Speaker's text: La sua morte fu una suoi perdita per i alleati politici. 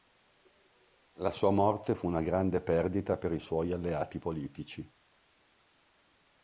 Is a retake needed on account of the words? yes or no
yes